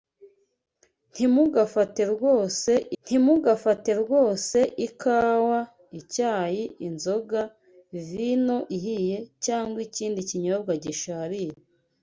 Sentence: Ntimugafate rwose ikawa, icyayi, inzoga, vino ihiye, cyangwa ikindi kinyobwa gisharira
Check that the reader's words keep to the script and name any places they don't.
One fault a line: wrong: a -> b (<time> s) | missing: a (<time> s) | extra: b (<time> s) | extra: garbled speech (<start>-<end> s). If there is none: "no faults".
extra: ntimugafate rwose (3.0 s)